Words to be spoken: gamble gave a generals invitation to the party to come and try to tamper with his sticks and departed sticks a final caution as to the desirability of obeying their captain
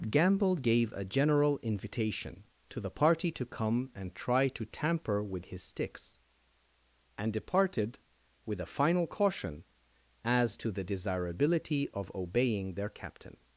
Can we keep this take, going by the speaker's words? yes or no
no